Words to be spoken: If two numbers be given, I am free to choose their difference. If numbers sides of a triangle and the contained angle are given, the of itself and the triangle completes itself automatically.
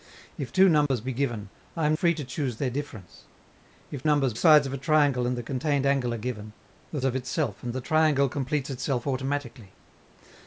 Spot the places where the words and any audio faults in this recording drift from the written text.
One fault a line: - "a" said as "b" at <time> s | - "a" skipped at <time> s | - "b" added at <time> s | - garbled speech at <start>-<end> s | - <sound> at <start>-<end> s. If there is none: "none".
- dropout at 0.9-0.9 s